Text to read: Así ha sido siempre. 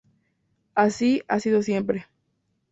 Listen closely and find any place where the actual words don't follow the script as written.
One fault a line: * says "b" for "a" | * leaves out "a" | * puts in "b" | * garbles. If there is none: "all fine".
all fine